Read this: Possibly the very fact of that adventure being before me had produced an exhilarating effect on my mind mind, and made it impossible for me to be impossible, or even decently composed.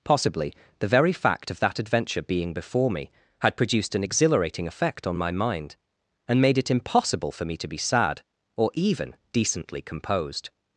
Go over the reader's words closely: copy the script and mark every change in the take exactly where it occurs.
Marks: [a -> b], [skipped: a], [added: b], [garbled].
Possibly the very fact of that adventure being before me had produced an exhilarating effect on my mind [skipped: mind,] and made it impossible for me to be [impossible, -> sad] or even decently composed.